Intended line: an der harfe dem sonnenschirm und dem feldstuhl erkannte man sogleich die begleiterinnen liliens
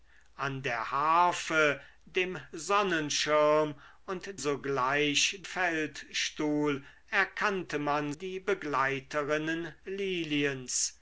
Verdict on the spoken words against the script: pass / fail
fail